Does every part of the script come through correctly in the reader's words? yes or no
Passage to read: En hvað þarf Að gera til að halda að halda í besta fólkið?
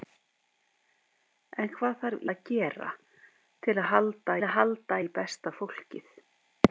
yes